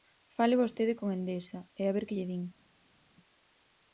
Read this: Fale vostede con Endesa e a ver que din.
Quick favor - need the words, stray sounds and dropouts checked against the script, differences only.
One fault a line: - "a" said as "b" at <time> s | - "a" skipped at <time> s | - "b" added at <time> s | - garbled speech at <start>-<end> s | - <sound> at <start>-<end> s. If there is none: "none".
- "lle" added at 2.2 s